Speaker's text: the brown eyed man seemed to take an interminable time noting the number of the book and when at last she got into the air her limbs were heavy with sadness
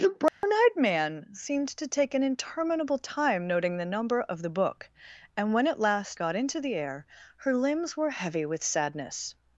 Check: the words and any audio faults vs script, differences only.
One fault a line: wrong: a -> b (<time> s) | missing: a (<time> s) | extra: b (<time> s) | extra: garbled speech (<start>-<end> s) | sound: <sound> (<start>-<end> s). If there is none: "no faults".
sound: dropout (0.3-0.4 s)
missing: she (6.2 s)